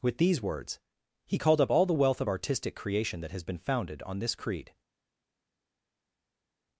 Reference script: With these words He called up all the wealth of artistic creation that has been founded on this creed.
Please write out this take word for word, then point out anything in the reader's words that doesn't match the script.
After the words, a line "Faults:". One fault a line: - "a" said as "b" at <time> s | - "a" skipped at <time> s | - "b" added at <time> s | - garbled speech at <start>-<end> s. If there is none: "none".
With these words He called up all the wealth of artistic creation that has been founded on this creed.
Faults:
none